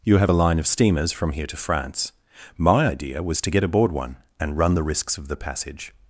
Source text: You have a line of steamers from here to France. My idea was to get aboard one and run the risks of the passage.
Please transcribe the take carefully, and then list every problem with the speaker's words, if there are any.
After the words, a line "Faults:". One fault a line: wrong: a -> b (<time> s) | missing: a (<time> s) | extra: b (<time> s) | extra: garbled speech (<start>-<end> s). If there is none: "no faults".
You have a line of steamers from here to France. My idea was to get aboard one and run the risks of the passage.
Faults:
no faults